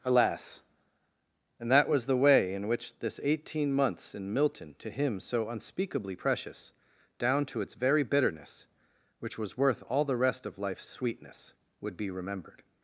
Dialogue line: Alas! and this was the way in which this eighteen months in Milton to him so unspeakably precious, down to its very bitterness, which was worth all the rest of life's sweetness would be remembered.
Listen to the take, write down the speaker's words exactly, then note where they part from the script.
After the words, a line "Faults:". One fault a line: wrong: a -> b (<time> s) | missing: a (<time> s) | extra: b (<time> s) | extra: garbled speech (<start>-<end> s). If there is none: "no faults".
Alas! and that was the way in which this eighteen months in Milton to him so unspeakably precious, down to its very bitterness, which was worth all the rest of life's sweetness would be remembered.
Faults:
wrong: this -> that (1.7 s)